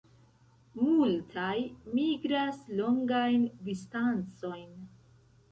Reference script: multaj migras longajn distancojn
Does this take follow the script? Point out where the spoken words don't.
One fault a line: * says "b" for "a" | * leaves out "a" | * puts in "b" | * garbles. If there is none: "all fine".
all fine